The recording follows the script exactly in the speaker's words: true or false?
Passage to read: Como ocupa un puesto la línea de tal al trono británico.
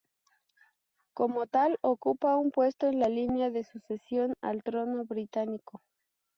false